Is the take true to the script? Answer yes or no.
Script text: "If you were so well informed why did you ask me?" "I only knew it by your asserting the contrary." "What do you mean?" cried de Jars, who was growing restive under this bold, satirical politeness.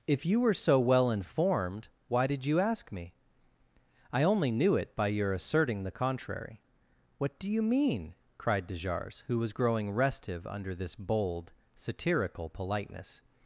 yes